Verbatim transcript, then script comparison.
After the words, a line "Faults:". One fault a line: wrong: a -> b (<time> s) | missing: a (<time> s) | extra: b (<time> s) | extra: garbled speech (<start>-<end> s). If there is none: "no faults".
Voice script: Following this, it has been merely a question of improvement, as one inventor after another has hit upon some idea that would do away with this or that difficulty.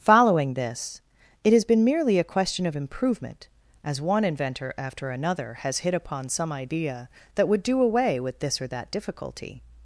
Following this, it has been merely a question of improvement, as one inventor after another has hit upon some idea that would do away with this or that difficulty.
Faults:
no faults